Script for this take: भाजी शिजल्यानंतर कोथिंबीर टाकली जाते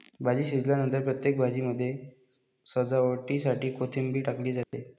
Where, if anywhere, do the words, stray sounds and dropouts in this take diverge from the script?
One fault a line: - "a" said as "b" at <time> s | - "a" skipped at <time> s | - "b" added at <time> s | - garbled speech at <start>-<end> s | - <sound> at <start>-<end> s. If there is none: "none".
- "प्रत्येक भाजीमध्ये सजावटीसाठी" added at 1.0 s
- dropout at 4.6-4.7 s